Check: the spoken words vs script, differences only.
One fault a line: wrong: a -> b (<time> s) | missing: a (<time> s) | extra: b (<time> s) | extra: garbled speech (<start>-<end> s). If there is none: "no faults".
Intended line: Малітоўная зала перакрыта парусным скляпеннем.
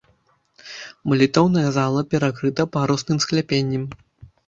no faults